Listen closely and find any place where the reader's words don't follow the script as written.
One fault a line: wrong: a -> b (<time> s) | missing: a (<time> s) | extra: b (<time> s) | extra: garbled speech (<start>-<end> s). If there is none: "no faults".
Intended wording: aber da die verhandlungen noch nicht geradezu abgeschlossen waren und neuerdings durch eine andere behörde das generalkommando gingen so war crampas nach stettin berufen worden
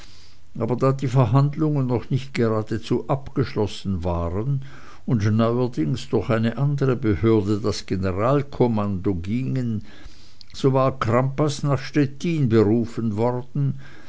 no faults